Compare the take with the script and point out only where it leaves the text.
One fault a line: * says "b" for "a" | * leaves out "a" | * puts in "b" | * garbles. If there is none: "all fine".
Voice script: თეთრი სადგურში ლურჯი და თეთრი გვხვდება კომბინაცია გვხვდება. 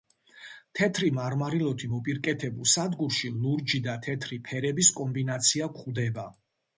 * puts in "მარმარილოთი მოპირკეთებულ"
* says "ფერების" for "გვხვდება"